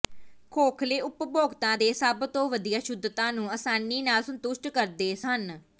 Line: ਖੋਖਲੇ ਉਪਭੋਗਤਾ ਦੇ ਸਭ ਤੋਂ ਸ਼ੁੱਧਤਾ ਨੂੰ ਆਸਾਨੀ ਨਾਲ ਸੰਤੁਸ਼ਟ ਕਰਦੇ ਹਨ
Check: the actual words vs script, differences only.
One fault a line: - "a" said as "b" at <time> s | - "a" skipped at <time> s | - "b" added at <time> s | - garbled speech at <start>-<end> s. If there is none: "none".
- "ਵਧੀਆ" added at 2.5 s